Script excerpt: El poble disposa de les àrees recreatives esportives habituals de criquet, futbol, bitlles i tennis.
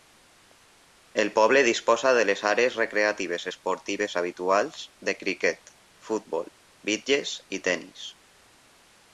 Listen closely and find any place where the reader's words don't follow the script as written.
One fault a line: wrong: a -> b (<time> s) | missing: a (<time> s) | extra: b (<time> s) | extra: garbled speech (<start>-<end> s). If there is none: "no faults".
no faults